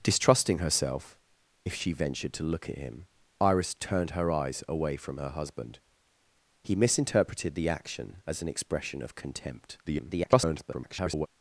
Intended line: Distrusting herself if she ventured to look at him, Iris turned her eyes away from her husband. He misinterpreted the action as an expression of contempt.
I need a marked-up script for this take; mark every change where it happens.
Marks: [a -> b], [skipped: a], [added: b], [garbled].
Distrusting herself if she ventured to look at him, Iris turned her eyes away from her husband. He misinterpreted the action as an expression of contempt. [garbled]